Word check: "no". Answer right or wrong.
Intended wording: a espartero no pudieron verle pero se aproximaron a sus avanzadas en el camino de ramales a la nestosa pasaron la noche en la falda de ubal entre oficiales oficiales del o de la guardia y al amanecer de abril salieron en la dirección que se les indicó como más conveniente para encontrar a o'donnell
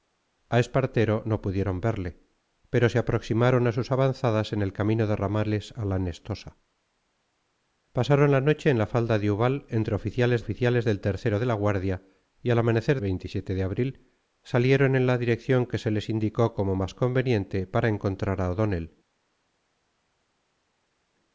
right